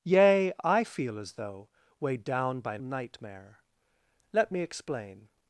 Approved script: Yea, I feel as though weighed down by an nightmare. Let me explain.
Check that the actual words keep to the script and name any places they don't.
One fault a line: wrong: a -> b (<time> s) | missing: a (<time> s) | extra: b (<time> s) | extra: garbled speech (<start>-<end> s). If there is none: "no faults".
no faults